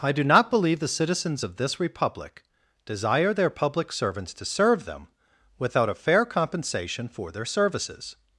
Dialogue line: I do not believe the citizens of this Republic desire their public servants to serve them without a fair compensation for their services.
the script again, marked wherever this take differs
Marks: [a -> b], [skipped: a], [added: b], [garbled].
I do not believe the citizens of this Republic desire their public servants to serve them without a fair compensation for their services.